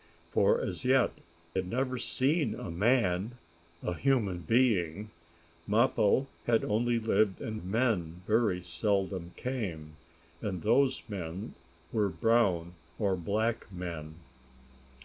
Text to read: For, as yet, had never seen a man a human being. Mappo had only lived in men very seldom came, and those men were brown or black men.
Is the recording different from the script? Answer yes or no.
no